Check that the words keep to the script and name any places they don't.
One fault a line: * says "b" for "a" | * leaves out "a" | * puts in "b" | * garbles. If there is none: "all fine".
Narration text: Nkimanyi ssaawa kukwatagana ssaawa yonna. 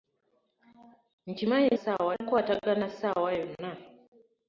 all fine